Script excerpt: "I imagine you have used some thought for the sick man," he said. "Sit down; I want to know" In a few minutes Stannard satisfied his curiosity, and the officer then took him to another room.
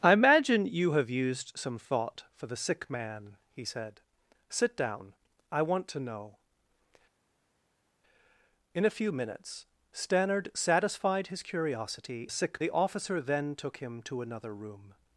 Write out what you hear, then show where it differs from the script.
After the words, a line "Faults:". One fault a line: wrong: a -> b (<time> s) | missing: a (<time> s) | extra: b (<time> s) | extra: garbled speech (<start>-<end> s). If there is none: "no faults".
"I imagine you have used some thought for the sick man," he said. "Sit down; I want to know" In a few minutes Stannard satisfied his curiosity, sick the officer then took him to another room.
Faults:
wrong: and -> sick (12.3 s)